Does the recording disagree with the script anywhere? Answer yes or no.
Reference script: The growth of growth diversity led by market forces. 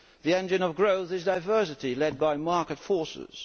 yes